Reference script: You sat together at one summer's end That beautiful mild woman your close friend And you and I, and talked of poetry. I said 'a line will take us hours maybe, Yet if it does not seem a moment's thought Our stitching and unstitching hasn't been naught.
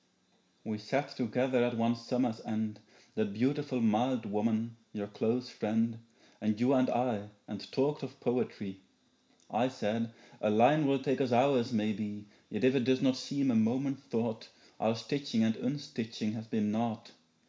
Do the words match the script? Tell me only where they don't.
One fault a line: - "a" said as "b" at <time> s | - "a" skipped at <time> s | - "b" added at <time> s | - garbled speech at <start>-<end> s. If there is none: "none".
- "You" said as "We" at 0.7 s
- "hasn't" said as "has" at 16.3 s